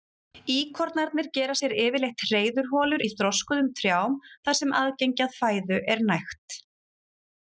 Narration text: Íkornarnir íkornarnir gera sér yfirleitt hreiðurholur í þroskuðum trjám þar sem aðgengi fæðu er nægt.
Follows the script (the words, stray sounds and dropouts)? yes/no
no